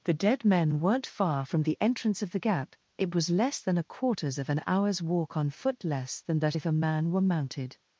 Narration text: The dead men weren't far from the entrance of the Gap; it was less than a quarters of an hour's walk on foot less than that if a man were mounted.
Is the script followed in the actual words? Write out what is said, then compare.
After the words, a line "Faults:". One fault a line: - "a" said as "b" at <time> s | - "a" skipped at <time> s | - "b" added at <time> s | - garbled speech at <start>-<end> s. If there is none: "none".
The dead men weren't far from the entrance of the Gap; it was less than a quarters of an hour's walk on foot less than that if a man were mounted.
Faults:
none